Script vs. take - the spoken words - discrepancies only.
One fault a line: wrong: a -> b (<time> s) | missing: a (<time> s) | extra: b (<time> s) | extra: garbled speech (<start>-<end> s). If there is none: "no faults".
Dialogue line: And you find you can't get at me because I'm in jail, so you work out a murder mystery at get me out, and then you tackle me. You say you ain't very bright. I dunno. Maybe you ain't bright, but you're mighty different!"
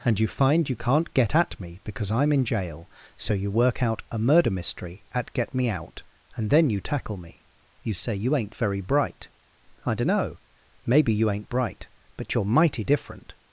no faults